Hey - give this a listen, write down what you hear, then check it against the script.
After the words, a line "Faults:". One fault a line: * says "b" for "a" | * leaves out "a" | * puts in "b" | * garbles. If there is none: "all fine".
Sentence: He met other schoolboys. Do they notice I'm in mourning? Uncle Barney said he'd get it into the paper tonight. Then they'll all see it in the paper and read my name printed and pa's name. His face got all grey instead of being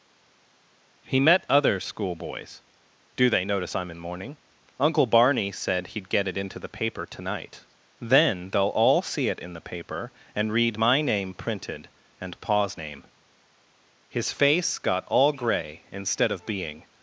He met other schoolboys. Do they notice I'm in mourning? Uncle Barney said he'd get it into the paper tonight. Then they'll all see it in the paper and read my name printed and pa's name. His face got all grey instead of being
Faults:
all fine